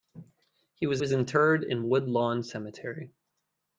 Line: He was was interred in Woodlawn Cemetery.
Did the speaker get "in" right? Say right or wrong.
right